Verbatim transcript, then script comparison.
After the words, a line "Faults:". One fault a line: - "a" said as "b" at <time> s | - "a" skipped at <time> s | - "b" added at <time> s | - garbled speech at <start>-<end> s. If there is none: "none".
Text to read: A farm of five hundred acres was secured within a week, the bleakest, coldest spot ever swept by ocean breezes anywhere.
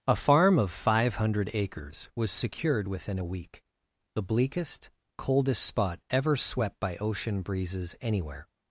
A farm of five hundred acres was secured within a week, the bleakest, coldest spot ever swept by ocean breezes anywhere.
Faults:
none